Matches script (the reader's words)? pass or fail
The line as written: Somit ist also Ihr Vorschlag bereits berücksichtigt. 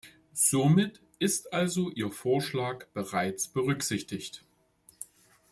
pass